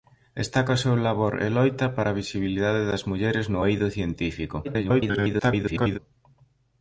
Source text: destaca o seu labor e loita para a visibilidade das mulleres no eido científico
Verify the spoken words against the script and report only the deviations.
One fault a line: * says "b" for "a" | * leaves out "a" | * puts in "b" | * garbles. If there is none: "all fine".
* garbles